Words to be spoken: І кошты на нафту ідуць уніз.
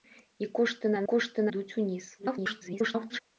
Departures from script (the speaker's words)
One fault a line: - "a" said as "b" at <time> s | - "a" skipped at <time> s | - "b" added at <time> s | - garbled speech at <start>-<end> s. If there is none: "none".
- "нафту" said as "кошты" at 1.1 s
- garbled speech at 2.2-3.2 s